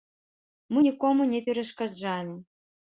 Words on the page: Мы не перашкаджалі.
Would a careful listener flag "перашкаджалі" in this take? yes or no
no